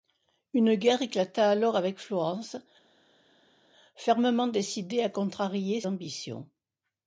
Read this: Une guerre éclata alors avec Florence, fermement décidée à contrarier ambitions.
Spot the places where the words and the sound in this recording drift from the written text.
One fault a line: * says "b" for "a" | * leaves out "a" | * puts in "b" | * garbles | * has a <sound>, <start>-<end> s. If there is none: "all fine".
all fine